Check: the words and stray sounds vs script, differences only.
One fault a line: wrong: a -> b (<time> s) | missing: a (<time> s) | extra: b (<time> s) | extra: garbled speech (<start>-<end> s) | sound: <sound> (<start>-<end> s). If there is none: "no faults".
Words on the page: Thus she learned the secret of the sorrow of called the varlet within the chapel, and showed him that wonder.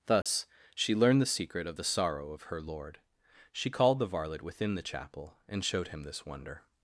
sound: dropout (0.2-0.3 s)
extra: her lord She (2.4 s)
wrong: that -> this (6.0 s)